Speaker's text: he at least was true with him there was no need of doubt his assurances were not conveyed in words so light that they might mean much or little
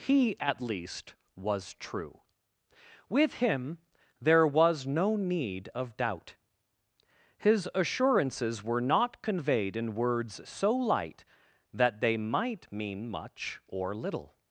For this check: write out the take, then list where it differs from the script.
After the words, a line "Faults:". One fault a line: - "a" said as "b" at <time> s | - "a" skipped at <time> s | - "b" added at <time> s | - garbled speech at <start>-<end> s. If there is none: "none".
he at least was true with him there was no need of doubt his assurances were not conveyed in words so light that they might mean much or little
Faults:
none